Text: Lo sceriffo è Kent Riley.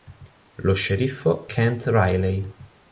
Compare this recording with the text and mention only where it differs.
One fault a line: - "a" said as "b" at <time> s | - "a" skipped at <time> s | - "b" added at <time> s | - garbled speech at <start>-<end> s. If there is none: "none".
- "è" skipped at 1.5 s